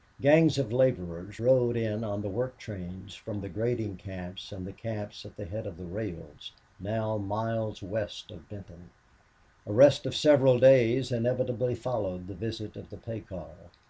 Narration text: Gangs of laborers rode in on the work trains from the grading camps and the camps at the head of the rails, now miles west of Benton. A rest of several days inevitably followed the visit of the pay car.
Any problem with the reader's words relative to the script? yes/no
no